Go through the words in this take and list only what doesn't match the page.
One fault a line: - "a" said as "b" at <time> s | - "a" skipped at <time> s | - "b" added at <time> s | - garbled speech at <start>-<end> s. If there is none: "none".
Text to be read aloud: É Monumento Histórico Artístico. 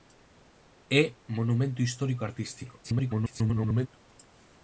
- garbled speech at 2.8-3.9 s